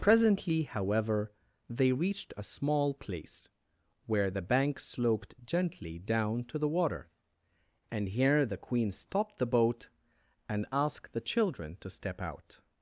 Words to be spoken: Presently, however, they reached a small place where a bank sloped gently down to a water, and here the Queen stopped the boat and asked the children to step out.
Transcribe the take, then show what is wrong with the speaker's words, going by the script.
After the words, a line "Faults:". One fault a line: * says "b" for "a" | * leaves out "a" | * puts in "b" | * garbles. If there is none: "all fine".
Presently, however, they reached a small place where the bank sloped gently down to the water, and here the Queen stopped the boat and asked the children to step out.
Faults:
* says "the" for "a"
* says "the" for "a"